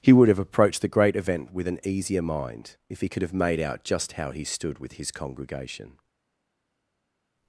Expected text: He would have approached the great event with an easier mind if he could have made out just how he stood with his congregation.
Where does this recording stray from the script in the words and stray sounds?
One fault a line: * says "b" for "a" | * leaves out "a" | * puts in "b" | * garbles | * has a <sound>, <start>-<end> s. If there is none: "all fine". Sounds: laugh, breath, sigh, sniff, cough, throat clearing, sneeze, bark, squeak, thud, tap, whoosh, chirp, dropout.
all fine